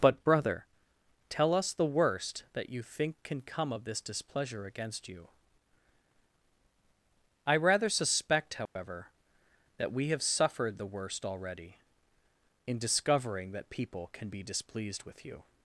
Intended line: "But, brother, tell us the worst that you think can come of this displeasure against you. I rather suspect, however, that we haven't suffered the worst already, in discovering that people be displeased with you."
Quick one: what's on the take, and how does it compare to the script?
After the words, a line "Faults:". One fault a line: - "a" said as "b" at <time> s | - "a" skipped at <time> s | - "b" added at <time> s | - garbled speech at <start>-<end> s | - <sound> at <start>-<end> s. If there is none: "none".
"But, brother, tell us the worst that you think can come of this displeasure against you. I rather suspect, however, that we have suffered the worst already, in discovering that people can be displeased with you."
Faults:
- dropout at 8.7-8.8 s
- "haven't" said as "have" at 10.1 s
- "can" added at 14.1 s